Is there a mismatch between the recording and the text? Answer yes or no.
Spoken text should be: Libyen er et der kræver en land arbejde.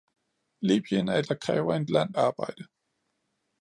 no